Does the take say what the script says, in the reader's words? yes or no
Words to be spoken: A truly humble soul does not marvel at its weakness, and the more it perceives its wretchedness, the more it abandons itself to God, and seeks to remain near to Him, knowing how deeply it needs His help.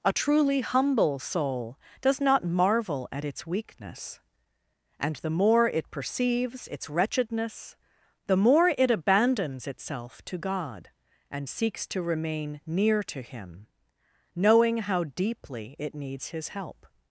yes